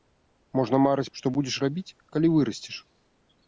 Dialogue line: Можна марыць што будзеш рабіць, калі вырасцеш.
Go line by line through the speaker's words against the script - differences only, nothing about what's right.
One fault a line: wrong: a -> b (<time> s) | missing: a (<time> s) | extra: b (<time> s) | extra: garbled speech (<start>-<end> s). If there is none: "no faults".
no faults